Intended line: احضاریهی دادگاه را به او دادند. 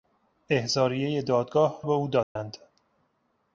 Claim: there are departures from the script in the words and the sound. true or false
true